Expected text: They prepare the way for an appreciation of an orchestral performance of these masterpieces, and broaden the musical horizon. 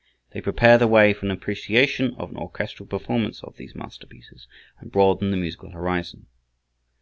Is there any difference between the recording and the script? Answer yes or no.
no